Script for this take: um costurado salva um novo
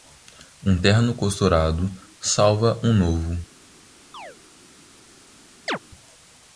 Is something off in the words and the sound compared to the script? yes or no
yes